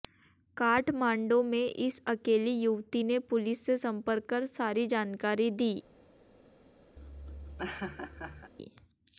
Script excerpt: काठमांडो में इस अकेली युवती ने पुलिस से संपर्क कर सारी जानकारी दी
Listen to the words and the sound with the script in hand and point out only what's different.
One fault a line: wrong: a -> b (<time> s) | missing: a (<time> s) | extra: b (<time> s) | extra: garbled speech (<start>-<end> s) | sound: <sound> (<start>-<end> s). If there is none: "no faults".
sound: laugh (7.0-8.5 s)